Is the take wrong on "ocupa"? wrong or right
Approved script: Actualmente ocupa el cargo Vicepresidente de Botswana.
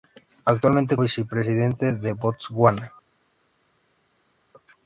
wrong